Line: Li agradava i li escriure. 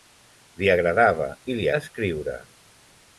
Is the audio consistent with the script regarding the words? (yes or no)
yes